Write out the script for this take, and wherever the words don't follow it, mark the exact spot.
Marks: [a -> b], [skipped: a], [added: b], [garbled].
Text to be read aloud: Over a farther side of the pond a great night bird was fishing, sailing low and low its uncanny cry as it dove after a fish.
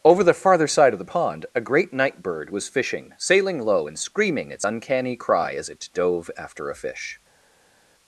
Over [a -> the] farther side of the pond a great night bird was fishing, sailing low and [low -> screaming] its uncanny cry as it dove after a fish.